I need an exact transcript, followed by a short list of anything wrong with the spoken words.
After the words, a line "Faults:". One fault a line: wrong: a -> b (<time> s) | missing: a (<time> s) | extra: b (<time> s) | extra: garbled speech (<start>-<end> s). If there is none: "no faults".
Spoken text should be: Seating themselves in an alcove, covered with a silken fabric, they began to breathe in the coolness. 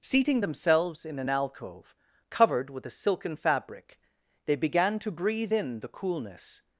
Seating themselves in an alcove, covered with a silken fabric, they began to breathe in the coolness.
Faults:
no faults